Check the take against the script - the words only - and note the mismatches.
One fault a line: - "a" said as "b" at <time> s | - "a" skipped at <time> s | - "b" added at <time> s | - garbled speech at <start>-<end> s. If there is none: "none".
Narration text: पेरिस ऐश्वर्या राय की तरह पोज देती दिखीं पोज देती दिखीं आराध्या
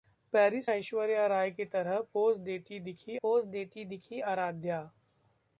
none